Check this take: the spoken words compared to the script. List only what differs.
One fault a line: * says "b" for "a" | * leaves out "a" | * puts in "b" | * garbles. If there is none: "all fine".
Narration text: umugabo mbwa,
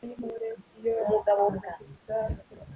all fine